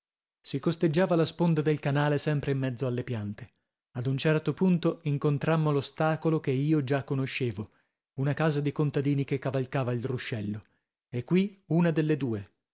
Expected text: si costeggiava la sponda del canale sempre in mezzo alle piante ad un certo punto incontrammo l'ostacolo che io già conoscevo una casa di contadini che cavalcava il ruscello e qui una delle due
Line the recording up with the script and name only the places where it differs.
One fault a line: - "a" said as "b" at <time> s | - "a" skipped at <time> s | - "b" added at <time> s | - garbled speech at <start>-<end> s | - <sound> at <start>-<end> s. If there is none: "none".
none